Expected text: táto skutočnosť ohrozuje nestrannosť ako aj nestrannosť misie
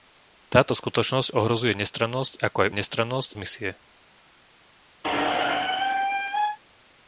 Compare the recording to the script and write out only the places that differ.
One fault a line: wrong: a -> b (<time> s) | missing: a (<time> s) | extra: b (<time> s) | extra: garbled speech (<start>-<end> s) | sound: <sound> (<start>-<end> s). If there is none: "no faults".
sound: squeak (5.0-6.6 s)